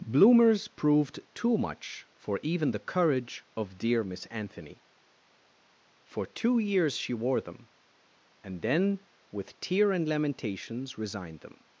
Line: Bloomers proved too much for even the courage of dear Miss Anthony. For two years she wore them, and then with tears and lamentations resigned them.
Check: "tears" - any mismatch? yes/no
yes